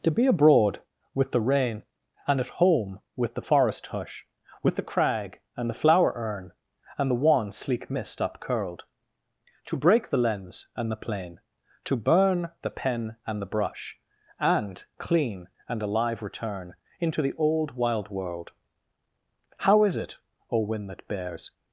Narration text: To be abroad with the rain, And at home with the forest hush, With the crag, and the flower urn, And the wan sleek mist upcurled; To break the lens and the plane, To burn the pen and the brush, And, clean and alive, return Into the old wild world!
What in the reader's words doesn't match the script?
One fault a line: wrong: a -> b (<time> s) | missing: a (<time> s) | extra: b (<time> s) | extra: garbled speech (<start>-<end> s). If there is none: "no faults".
extra: How is it O wind that bears (19.6 s)